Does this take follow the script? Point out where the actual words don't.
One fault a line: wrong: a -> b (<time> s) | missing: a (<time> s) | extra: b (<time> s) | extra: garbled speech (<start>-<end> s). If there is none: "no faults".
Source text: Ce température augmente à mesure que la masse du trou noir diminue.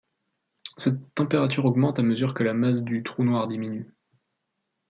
wrong: Ce -> Cette (0.8 s)